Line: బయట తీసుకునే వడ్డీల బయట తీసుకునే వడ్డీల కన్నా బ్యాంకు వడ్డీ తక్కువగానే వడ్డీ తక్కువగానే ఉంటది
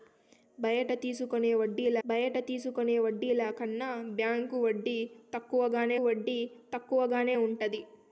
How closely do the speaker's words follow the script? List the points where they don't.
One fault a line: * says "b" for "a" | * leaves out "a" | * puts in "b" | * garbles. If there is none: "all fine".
all fine